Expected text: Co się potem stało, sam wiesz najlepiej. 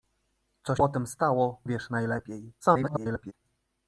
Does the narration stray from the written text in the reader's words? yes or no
yes